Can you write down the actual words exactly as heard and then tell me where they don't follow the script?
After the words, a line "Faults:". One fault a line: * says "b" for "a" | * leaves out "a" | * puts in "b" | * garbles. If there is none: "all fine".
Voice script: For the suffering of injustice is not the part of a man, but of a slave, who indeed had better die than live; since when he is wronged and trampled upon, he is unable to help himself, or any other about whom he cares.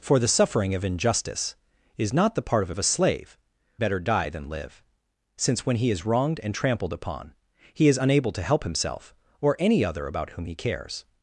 For the suffering of injustice is not the part of a of a slave, better die than live; since when he is wronged and trampled upon, he is unable to help himself, or any other about whom he cares.
Faults:
* leaves out "man but"
* leaves out "who indeed had"